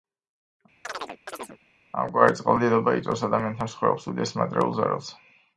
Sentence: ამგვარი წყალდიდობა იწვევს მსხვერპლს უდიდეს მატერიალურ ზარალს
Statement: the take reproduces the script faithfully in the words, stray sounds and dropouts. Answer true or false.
false